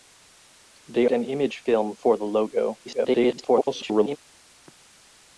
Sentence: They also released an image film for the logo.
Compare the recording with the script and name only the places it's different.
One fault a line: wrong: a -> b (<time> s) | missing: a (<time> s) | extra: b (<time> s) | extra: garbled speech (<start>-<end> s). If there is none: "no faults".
missing: also released (1.1 s)
extra: garbled speech (2.9-4.2 s)